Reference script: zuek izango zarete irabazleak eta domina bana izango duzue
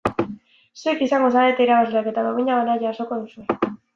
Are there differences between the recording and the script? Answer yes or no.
yes